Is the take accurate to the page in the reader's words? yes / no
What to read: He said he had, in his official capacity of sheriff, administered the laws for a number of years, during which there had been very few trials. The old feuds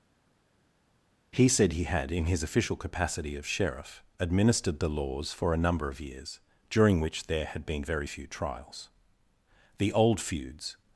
yes